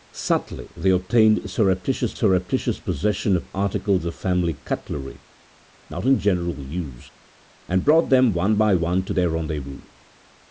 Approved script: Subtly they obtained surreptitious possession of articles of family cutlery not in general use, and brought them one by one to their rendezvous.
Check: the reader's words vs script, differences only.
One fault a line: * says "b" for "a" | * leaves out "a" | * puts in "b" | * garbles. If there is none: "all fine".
* puts in "surreptitious"